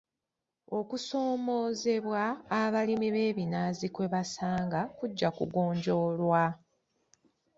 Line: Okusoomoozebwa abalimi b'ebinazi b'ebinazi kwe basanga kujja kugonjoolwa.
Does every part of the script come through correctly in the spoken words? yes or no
no